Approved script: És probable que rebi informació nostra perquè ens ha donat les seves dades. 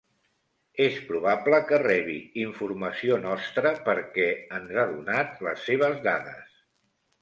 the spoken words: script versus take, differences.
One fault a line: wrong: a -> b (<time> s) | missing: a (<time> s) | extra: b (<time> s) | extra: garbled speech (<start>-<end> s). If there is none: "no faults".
no faults